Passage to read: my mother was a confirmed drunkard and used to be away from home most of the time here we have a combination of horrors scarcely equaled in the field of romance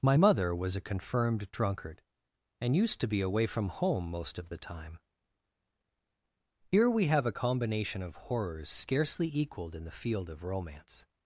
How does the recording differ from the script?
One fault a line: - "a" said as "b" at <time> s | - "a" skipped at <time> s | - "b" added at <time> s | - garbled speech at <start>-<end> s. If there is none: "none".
none